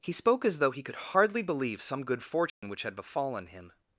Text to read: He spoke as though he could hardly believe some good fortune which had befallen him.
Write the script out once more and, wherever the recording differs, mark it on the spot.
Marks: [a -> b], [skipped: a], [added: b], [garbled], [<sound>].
He spoke as though he could hardly believe some good fortune [dropout] which had befallen him.